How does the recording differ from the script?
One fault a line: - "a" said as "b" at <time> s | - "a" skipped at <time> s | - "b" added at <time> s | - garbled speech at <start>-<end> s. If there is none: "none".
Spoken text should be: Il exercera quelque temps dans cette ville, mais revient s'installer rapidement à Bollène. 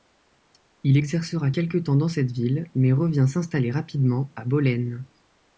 none